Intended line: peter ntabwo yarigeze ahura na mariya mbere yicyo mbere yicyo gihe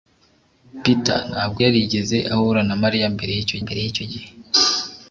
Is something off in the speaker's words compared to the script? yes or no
no